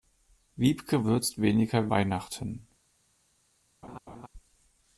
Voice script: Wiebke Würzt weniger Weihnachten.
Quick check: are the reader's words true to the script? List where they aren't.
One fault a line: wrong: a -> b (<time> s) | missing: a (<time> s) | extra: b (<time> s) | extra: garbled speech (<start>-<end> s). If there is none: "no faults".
no faults